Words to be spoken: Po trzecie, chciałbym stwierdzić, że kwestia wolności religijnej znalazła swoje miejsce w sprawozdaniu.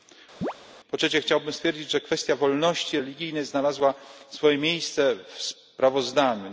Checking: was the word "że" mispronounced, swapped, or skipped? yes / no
no